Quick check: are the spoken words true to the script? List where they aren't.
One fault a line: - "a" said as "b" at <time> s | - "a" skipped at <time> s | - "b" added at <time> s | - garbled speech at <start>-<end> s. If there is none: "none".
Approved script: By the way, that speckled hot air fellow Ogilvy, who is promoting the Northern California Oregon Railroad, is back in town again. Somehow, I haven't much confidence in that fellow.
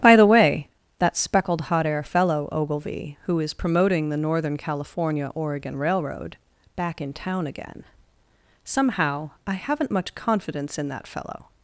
- "is" skipped at 6.4 s